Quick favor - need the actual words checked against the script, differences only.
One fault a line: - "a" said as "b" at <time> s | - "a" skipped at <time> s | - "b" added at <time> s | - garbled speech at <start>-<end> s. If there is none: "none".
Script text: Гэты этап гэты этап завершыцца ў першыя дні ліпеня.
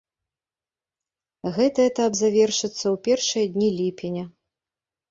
- "гэты этап" skipped at 2.1 s